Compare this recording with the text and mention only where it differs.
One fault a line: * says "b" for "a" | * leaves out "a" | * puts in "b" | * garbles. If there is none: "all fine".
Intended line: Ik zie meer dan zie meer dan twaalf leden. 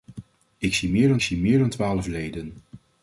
all fine